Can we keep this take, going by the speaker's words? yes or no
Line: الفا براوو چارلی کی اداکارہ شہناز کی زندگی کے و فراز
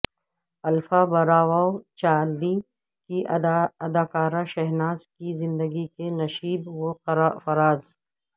no